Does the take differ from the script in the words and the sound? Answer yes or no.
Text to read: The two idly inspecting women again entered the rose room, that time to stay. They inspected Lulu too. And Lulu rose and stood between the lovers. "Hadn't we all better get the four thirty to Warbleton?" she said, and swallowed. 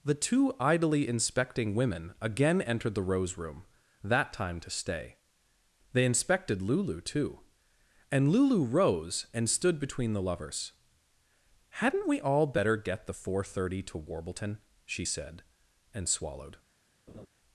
yes